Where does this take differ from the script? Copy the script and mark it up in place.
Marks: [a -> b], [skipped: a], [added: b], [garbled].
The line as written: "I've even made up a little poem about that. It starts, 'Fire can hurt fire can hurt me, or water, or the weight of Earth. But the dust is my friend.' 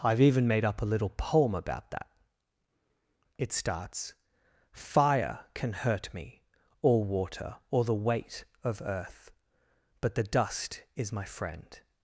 "I've even made up a little poem about that. It starts, 'Fire can hurt [skipped: fire can hurt] me, or water, or the weight of Earth. But the dust is my friend.'